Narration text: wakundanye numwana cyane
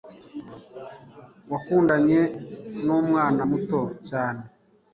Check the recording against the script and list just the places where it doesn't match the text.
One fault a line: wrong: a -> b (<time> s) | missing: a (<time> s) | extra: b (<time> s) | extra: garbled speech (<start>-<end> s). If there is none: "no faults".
extra: muto (3.5 s)